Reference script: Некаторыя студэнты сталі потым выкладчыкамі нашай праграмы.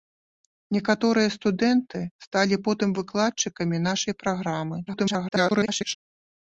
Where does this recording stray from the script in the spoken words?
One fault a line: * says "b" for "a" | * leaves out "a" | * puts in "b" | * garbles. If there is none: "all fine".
* garbles